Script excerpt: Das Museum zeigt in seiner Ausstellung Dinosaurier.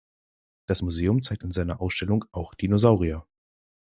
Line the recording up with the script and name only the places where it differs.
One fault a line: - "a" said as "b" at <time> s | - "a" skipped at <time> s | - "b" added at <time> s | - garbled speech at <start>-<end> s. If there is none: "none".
- "auch" added at 2.3 s